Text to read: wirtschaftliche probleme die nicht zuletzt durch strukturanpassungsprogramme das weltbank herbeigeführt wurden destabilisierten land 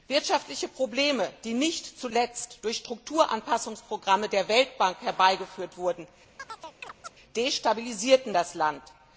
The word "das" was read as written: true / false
false